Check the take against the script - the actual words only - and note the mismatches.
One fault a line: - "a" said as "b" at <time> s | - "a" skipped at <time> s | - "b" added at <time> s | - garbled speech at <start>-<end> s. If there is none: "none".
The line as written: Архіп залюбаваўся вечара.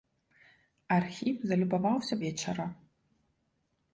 none